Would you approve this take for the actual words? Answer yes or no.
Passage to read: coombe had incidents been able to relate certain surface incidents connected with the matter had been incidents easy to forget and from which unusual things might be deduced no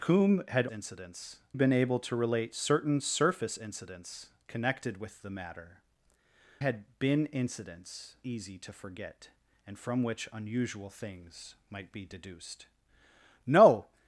yes